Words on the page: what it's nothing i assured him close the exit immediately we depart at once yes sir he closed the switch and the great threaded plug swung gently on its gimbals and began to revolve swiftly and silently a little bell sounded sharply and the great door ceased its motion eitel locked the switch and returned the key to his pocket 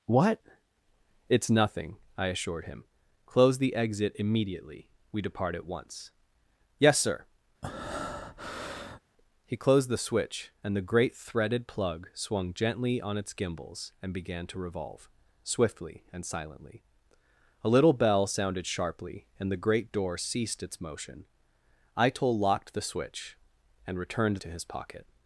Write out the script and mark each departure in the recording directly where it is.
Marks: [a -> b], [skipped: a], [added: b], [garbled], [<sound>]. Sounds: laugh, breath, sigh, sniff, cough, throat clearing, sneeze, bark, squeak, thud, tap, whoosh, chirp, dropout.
what it's nothing i assured him close the exit immediately we depart at once yes sir [breath] he closed the switch and the great threaded plug swung gently on its gimbals and began to revolve swiftly and silently a little bell sounded sharply and the great door ceased its motion eitel locked the switch and returned [skipped: the key] to his pocket